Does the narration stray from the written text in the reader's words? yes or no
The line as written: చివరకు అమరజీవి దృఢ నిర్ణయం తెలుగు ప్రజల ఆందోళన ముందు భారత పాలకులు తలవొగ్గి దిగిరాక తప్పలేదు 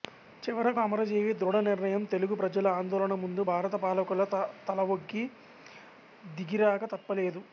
no